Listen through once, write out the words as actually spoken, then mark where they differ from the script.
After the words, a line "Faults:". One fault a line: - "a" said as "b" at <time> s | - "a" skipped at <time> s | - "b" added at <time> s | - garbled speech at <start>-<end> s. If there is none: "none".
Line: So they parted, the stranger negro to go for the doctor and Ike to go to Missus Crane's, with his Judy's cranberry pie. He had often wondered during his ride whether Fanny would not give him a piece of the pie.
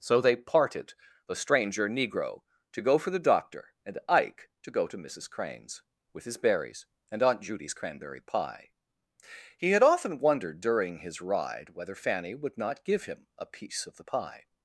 So they parted, the stranger negro to go for the doctor and Ike to go to Missus Crane's, with his berries, and Aunt Judy's cranberry pie. He had often wondered during his ride whether Fanny would not give him a piece of the pie.
Faults:
- "berries and Aunt" added at 6.4 s